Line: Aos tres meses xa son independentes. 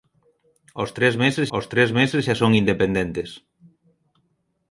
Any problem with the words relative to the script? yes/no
yes